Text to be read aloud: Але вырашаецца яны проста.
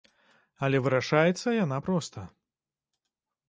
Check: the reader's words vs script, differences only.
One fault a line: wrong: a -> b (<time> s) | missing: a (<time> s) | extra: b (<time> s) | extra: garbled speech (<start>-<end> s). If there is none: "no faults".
wrong: яны -> яна (1.6 s)